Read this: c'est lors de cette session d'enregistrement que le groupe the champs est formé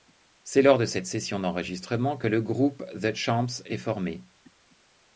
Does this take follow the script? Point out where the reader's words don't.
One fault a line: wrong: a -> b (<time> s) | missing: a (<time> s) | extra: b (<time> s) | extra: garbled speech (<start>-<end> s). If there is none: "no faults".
no faults